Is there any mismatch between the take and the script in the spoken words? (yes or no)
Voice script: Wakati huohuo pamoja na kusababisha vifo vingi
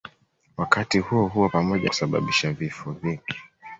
yes